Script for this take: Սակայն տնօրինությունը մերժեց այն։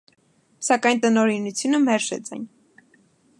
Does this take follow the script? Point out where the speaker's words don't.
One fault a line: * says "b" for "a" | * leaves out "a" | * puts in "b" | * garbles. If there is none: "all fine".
all fine